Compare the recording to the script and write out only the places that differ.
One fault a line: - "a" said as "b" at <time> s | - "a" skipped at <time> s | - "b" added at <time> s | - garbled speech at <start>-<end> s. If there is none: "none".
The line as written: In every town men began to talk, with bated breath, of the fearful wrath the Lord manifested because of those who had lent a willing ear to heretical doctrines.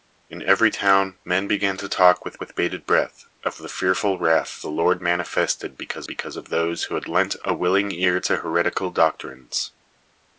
- "with" added at 2.4 s
- "because" added at 6.0 s